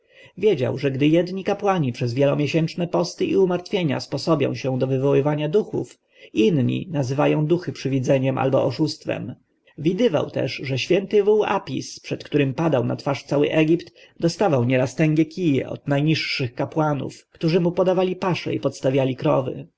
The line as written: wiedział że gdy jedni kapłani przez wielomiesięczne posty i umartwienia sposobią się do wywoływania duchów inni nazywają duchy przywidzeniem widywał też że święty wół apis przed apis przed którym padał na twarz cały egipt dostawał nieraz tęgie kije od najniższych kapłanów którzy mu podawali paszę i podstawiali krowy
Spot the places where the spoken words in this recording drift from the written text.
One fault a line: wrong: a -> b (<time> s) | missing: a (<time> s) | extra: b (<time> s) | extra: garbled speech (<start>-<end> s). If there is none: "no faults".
extra: albo oszustwem (8.4 s)
missing: apis przed (12.2 s)